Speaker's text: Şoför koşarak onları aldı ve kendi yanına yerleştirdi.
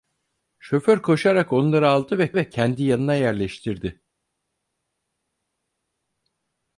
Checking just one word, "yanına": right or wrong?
right